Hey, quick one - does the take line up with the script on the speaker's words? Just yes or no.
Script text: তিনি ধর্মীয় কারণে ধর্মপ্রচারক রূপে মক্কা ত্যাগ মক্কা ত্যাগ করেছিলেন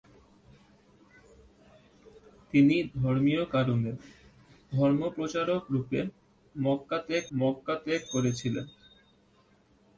yes